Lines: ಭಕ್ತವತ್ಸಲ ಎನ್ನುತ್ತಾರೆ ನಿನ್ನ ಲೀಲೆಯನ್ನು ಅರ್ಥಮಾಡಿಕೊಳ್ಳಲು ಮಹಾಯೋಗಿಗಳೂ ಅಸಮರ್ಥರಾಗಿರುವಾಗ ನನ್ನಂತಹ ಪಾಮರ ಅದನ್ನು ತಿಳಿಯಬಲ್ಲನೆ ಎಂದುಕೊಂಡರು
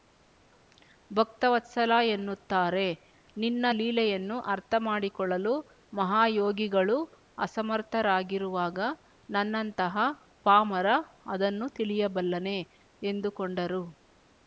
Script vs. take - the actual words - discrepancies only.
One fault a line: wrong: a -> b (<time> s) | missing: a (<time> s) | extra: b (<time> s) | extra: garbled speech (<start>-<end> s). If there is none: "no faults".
no faults